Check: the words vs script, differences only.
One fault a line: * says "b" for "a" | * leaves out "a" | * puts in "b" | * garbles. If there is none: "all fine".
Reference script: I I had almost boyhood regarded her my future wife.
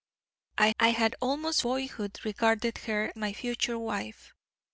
all fine